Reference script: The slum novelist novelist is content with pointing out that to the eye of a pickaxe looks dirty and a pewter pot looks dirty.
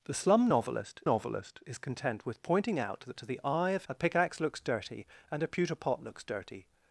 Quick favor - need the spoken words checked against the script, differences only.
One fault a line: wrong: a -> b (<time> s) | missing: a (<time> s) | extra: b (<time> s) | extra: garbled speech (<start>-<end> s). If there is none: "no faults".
no faults